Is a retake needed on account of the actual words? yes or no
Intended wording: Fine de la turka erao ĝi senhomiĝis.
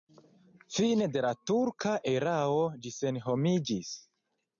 no